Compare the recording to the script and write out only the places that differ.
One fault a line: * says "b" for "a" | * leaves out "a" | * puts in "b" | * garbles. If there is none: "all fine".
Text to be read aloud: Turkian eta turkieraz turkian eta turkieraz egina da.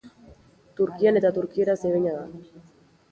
* leaves out "turkian eta turkieraz"